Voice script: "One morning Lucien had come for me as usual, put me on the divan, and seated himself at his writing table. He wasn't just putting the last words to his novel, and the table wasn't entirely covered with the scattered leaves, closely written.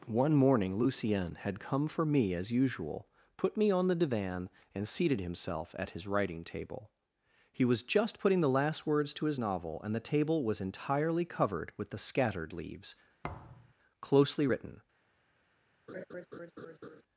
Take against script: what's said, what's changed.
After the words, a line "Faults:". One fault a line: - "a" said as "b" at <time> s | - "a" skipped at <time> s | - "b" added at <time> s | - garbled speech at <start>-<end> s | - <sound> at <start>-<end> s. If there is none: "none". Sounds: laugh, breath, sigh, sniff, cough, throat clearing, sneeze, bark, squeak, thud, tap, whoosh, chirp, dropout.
"One morning Lucien had come for me as usual, put me on the divan, and seated himself at his writing table. He was just putting the last words to his novel, and the table was entirely covered with the scattered leaves, closely written.
Faults:
- "wasn't" said as "was" at 7.6 s
- "wasn't" said as "was" at 10.4 s
- thud at 13.2-13.7 s
- laugh at 15.9-17.0 s